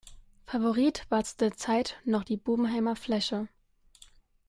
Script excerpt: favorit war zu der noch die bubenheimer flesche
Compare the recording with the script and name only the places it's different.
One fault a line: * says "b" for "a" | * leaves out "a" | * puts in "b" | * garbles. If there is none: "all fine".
* puts in "zeit"